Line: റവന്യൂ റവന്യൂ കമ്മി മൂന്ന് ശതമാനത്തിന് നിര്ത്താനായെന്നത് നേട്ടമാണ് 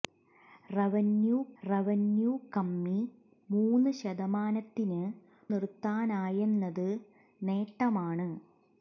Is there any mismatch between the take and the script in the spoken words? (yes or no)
no